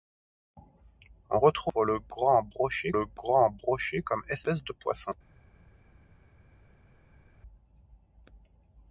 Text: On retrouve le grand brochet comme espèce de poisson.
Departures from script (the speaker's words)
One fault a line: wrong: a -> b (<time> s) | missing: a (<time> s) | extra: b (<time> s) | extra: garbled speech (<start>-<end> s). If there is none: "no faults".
extra: le grand brochet (2.9 s)